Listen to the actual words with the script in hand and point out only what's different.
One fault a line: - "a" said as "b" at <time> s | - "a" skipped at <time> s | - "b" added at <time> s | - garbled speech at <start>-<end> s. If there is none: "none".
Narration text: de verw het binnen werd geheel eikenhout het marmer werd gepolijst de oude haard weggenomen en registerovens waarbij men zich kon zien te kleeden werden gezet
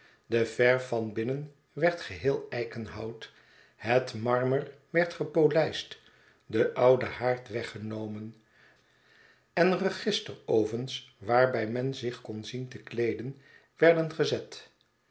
- "het" said as "van" at 0.8 s